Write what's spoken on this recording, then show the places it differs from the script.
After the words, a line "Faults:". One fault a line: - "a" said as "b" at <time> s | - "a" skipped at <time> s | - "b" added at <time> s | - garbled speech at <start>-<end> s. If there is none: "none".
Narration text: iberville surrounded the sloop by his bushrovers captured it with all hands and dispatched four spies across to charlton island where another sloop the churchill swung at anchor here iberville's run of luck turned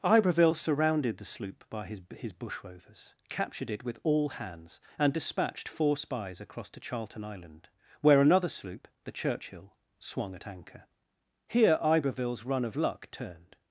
iberville surrounded the sloop by his his bushrovers captured it with all hands and dispatched four spies across to charlton island where another sloop the churchill swung at anchor here iberville's run of luck turned
Faults:
- "his" added at 2.1 s